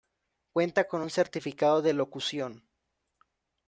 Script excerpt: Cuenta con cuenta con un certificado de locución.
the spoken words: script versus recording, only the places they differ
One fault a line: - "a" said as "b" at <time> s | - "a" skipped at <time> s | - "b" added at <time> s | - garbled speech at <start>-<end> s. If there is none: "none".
- "cuenta con" skipped at 1.0 s